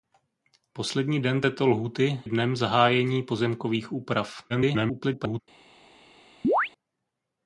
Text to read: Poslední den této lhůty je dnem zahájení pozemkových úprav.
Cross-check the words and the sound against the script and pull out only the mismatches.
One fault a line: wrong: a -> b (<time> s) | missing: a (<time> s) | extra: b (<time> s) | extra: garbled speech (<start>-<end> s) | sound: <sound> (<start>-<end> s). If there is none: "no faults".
missing: je (2.2 s)
extra: garbled speech (4.5-5.4 s)
sound: chirp (6.4-6.7 s)